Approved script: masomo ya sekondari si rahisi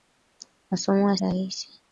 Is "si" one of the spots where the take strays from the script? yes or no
yes